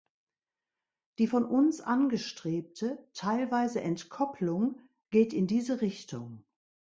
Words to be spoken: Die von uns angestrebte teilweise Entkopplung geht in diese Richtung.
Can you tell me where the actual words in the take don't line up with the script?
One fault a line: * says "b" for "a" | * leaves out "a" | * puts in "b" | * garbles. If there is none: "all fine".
all fine